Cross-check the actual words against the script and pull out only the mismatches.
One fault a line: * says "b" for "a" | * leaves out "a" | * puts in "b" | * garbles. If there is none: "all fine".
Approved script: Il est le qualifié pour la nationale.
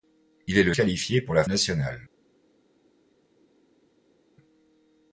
all fine